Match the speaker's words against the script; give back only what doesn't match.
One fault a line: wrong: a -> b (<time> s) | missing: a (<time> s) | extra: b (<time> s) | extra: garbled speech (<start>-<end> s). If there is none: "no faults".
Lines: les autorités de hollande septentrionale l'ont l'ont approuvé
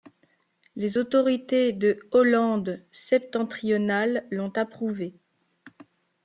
missing: l'ont (4.5 s)